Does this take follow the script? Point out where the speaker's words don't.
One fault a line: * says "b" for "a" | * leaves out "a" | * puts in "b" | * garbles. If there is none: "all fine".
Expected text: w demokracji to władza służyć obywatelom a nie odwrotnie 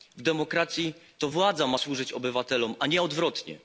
* puts in "ma"